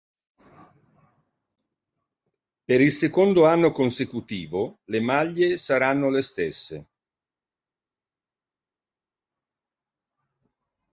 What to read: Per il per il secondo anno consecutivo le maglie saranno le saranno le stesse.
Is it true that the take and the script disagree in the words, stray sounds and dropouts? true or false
true